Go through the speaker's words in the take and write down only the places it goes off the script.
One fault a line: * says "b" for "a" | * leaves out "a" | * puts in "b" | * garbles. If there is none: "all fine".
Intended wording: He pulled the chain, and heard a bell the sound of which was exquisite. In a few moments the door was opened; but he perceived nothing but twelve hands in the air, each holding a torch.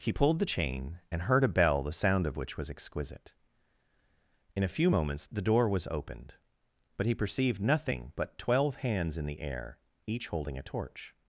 all fine